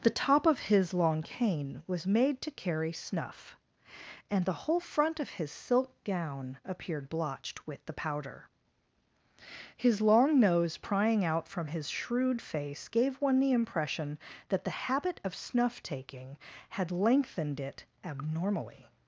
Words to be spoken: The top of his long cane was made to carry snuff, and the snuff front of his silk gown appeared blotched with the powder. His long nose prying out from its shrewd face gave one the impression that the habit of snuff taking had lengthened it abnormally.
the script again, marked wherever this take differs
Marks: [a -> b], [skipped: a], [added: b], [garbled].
The top of his long cane was made to carry snuff, and the [snuff -> whole] front of his silk gown appeared blotched with the powder. His long nose prying out from [its -> his] shrewd face gave one the impression that the habit of snuff taking had lengthened it abnormally.